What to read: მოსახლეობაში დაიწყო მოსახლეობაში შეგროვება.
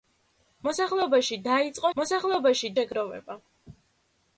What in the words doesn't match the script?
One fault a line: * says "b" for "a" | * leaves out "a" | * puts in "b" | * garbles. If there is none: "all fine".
all fine